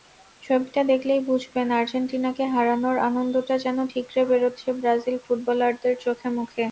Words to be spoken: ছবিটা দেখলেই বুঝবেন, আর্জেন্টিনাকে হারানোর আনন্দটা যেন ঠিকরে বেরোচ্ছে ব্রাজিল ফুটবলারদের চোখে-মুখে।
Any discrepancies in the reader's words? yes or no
no